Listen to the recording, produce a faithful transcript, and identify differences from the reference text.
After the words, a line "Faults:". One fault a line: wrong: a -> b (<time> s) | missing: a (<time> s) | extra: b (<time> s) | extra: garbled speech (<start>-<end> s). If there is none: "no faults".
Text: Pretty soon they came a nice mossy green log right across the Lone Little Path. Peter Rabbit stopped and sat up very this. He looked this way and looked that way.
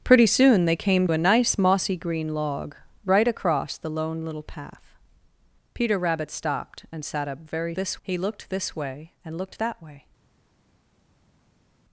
Pretty soon they came a nice mossy green log right across the Lone Little Path. Peter Rabbit stopped and sat up very this. He looked this way and looked that way.
Faults:
no faults